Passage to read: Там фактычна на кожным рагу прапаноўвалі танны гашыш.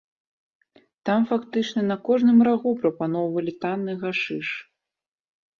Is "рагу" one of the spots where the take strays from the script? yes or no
no